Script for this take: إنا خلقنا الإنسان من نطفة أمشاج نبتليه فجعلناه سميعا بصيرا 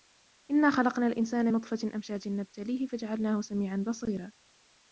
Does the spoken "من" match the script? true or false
false